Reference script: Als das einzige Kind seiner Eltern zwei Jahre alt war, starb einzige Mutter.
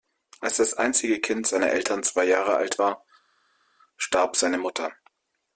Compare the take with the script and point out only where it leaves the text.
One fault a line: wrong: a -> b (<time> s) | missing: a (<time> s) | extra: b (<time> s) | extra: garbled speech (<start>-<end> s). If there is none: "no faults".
wrong: einzige -> seine (4.3 s)